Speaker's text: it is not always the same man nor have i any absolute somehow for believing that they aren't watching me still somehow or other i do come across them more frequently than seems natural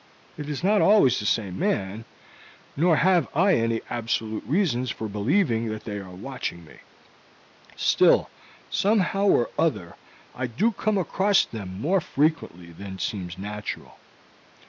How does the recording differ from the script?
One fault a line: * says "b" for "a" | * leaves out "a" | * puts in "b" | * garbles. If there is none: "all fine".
* says "reasons" for "somehow"
* says "are" for "aren't"